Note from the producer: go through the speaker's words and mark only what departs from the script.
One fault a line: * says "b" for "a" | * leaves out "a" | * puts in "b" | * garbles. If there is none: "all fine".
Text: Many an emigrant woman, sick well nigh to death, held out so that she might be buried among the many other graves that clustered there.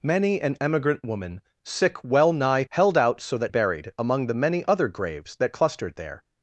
* leaves out "to death"
* leaves out "she might be"